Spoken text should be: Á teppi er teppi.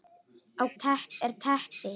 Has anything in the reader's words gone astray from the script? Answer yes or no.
no